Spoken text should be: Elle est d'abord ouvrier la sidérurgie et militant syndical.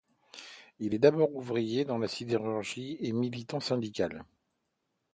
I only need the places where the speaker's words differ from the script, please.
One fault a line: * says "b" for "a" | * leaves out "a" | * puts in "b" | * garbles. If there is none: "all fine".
* says "Il" for "Elle"
* puts in "dans"